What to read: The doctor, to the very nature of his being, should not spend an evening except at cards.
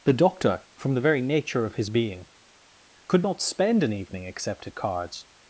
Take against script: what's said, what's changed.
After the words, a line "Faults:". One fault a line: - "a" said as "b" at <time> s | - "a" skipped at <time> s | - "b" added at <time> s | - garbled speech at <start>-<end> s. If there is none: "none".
The doctor, from the very nature of his being, could not spend an evening except at cards.
Faults:
- "to" said as "from" at 0.8 s
- "should" said as "could" at 3.1 s